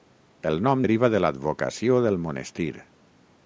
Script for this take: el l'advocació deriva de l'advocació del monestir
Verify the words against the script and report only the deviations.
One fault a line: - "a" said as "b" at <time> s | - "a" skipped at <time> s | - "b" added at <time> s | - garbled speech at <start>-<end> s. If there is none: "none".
- "l'advocació" said as "nom" at 0.7 s